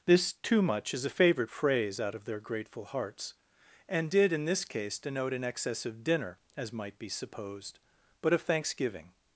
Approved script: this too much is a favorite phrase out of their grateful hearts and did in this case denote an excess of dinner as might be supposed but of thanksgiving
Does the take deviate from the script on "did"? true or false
false